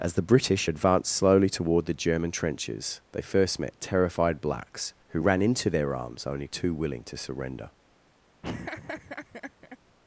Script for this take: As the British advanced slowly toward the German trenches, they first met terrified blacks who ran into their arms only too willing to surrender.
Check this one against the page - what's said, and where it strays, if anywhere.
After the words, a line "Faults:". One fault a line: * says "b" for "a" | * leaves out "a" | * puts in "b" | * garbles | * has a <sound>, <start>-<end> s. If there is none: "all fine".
As the British advanced slowly toward the German trenches, they first met terrified blacks who ran into their arms only too willing to surrender.
Faults:
* has a laugh, 8.4-9.8 s